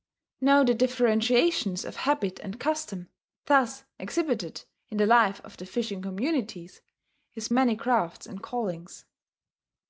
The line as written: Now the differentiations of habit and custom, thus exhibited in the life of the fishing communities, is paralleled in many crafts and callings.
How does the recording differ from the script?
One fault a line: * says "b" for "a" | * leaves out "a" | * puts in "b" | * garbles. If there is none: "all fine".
* leaves out "paralleled in"